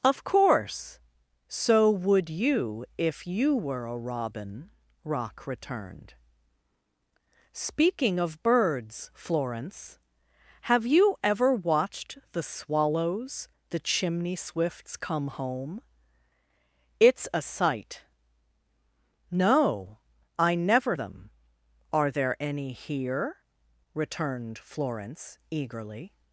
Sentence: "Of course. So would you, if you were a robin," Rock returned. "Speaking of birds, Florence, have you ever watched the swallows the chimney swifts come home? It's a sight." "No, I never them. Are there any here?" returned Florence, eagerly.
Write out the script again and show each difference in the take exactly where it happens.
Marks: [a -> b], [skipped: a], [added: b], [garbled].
"Of course. So would you, if you were a robin," Rock returned. "Speaking of birds, Florence, have you ever watched the swallows the chimney swifts come home? It's a sight." "No, I never them. Are there any here?" returned Florence, eagerly.